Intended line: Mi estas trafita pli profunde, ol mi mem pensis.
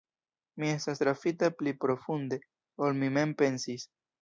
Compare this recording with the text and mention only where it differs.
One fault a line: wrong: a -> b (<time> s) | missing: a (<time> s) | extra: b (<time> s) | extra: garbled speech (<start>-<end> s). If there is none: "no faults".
no faults